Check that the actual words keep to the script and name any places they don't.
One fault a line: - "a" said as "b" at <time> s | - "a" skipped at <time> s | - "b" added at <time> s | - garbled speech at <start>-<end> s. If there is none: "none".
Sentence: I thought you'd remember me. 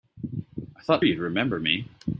none